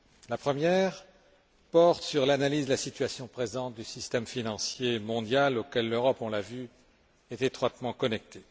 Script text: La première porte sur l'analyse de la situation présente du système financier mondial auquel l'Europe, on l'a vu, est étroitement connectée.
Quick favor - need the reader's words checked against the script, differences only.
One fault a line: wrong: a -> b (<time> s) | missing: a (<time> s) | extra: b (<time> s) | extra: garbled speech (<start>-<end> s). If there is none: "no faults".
no faults